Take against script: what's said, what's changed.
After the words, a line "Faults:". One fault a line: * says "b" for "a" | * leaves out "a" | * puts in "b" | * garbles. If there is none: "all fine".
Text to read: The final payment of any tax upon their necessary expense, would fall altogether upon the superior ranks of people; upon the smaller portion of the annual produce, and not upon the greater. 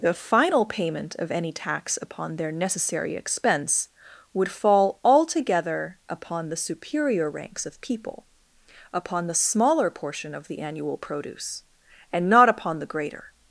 The final payment of any tax upon their necessary expense, would fall altogether upon the superior ranks of people; upon the smaller portion of the annual produce, and not upon the greater.
Faults:
all fine